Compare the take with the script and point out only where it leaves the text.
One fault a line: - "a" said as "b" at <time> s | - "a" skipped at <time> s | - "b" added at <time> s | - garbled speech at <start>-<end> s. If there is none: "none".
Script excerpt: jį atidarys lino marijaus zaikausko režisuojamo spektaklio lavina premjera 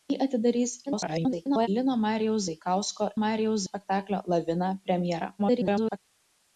- garbled speech at 0.9-1.7 s
- "režisuojamo" said as "marijaus" at 3.2 s
- garbled speech at 5.4-6.0 s